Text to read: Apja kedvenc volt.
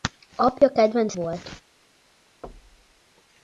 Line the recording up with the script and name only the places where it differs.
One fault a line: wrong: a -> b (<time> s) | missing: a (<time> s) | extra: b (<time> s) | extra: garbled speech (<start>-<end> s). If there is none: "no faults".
no faults